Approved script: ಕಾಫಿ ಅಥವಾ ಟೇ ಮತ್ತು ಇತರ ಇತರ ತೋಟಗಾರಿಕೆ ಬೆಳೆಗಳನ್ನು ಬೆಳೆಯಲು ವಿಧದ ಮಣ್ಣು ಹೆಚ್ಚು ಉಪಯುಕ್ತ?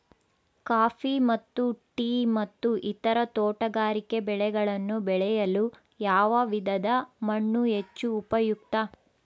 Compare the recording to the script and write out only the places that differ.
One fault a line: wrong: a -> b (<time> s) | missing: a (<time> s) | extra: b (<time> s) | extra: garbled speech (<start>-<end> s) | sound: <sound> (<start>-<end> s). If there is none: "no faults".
wrong: ಅಥವಾ -> ಮತ್ತು (1.2 s)
missing: ಇತರ (3.2 s)
extra: ಯಾವ (6.0 s)